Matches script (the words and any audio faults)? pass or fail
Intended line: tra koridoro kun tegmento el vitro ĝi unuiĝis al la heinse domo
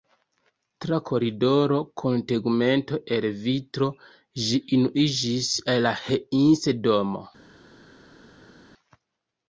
pass